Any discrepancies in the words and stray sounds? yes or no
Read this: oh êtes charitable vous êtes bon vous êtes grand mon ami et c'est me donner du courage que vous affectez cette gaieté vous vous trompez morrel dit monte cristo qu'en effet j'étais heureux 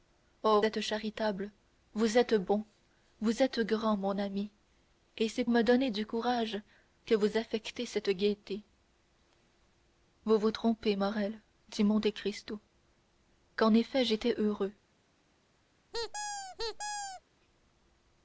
yes